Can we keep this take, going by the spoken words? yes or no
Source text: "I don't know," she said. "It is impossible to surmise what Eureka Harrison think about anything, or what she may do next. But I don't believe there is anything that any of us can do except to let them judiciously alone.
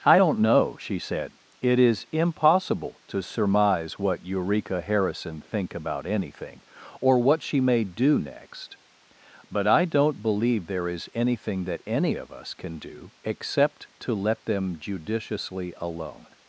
yes